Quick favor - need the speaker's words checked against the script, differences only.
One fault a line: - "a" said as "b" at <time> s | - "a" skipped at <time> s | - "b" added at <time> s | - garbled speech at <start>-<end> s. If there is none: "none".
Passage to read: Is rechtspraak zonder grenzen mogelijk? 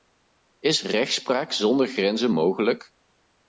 none